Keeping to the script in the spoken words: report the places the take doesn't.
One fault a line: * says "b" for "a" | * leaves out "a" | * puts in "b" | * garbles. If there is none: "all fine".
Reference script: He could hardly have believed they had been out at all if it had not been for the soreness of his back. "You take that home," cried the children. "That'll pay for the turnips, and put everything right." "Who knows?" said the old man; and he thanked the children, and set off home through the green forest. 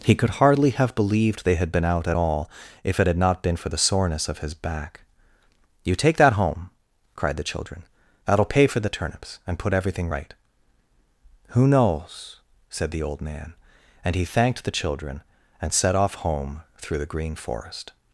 all fine